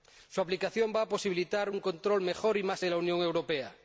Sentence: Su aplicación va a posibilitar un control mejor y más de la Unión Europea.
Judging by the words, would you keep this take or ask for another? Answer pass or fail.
pass